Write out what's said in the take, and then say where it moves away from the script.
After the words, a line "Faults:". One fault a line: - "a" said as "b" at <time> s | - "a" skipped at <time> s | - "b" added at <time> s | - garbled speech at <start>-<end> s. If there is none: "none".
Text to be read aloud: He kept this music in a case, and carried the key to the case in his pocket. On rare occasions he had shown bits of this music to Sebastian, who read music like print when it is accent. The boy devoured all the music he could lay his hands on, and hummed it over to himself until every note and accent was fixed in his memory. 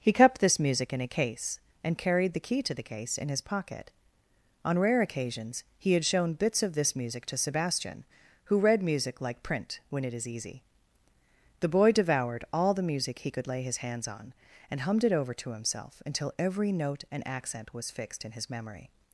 He kept this music in a case, and carried the key to the case in his pocket. On rare occasions he had shown bits of this music to Sebastian, who read music like print when it is easy. The boy devoured all the music he could lay his hands on, and hummed it over to himself until every note and accent was fixed in his memory.
Faults:
- "accent" said as "easy" at 10.3 s